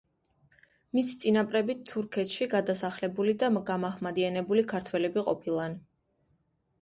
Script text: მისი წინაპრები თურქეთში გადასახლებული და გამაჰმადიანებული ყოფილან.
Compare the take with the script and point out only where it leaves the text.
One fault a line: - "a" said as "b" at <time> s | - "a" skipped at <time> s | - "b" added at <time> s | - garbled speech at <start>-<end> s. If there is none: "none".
- "ქართველები" added at 4.7 s